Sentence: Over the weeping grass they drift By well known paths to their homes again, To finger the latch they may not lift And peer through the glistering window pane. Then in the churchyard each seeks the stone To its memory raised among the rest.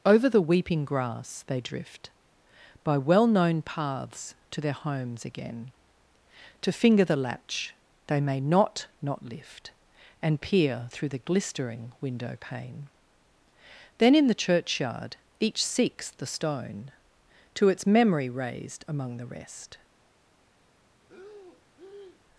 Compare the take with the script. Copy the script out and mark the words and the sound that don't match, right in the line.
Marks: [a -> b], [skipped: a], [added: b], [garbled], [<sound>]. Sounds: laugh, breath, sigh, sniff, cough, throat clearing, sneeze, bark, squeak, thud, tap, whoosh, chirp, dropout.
Over the weeping grass they drift By well known paths to their homes again, To finger the latch they may not [added: not] lift And peer through the glistering window pane. Then in the churchyard each seeks the stone To its memory raised among the rest. [breath]